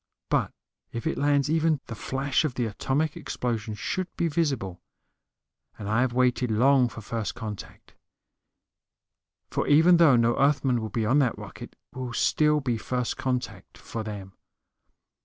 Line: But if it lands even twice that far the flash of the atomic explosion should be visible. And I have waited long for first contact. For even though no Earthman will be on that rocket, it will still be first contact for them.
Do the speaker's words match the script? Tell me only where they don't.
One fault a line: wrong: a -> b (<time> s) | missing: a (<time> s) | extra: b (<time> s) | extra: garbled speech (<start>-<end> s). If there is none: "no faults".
missing: twice that far (1.8 s)
missing: it (11.8 s)